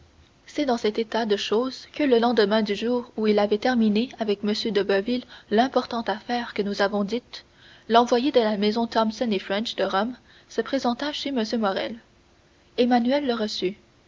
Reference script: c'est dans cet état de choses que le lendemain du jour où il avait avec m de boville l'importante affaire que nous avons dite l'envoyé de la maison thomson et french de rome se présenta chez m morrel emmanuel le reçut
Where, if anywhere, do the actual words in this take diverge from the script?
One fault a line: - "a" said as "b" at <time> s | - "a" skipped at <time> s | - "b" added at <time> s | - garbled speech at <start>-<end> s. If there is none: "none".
- "terminé" added at 3.6 s